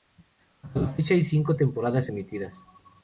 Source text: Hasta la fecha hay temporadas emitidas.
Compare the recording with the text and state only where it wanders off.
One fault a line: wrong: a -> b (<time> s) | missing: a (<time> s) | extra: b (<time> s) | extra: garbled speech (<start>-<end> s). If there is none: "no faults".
extra: cinco (1.2 s)